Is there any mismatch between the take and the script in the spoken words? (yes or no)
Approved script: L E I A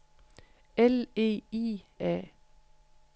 no